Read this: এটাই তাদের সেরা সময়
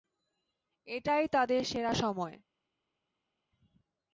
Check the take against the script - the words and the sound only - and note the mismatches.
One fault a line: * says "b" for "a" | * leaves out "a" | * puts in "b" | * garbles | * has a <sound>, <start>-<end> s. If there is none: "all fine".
all fine